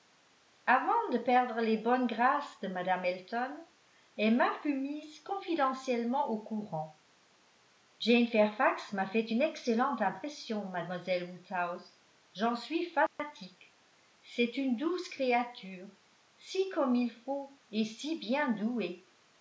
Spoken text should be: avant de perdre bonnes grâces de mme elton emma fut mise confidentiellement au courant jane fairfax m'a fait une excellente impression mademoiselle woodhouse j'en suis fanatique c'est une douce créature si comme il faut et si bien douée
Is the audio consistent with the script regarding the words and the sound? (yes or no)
no